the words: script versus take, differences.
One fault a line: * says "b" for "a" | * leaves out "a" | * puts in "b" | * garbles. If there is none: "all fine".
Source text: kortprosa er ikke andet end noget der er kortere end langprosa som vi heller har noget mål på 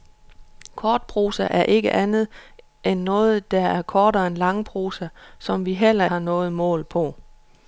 all fine